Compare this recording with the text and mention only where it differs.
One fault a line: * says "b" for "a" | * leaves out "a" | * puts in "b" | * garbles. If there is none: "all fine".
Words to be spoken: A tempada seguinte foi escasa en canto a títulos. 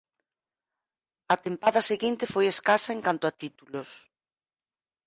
all fine